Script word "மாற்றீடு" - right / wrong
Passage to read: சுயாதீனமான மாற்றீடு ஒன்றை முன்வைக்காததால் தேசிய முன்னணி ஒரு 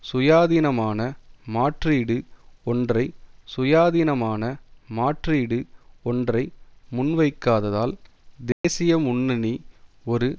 right